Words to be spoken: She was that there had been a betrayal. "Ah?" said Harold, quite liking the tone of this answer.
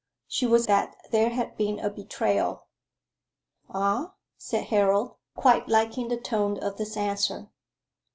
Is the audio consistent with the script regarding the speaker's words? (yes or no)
yes